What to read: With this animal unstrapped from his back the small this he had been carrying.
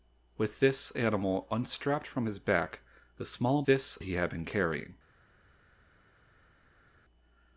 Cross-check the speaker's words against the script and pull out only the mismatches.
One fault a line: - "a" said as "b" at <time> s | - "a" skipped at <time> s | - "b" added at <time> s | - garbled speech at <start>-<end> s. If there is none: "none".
none